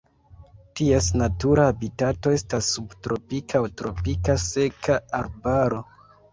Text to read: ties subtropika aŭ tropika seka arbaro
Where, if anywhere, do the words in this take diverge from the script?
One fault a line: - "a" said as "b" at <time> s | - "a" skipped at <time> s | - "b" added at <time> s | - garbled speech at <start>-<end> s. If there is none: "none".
- "natura habitato estas" added at 1.2 s